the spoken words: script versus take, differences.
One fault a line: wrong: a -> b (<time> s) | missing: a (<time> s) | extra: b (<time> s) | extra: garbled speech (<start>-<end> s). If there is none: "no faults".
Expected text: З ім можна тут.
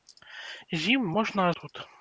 no faults